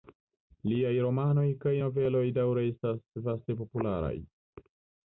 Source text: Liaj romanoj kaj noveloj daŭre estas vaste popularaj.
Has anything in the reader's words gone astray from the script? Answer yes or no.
no